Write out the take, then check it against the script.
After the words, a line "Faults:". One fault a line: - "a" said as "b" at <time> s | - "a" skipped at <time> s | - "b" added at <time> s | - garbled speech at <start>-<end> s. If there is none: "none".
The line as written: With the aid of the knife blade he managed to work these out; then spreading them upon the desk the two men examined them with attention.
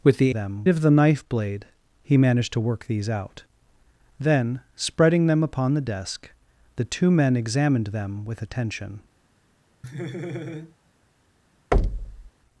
With the them of the knife blade he managed to work these out; then spreading them upon the desk the two men examined them with attention.
Faults:
- "aid" said as "them" at 0.3 s